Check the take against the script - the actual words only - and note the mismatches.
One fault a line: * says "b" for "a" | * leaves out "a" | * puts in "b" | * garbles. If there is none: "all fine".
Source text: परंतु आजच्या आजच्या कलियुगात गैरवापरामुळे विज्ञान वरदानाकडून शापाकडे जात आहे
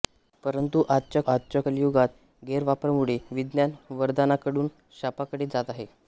all fine